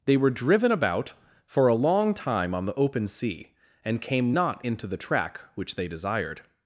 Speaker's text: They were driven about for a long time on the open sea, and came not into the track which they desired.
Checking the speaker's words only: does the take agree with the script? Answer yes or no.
yes